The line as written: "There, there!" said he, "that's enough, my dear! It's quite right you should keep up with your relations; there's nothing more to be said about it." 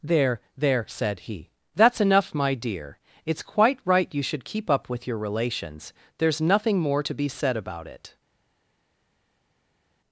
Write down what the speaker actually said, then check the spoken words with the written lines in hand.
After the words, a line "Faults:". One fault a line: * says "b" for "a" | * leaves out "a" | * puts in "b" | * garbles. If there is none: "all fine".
"There, there!" said he, "that's enough, my dear! It's quite right you should keep up with your relations; there's nothing more to be said about it."
Faults:
all fine